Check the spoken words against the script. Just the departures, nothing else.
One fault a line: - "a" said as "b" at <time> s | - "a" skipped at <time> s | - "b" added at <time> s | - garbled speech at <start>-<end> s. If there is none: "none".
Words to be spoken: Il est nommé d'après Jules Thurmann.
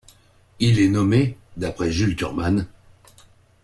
none